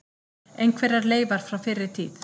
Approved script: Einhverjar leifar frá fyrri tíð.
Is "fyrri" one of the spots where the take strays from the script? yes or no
no